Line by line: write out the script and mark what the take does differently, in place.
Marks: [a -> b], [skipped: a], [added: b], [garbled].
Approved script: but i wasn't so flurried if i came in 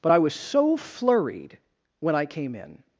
but i [wasn't -> was] so flurried [if -> when] i came in